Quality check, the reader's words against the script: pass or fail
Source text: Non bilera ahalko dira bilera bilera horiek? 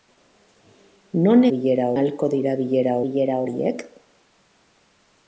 pass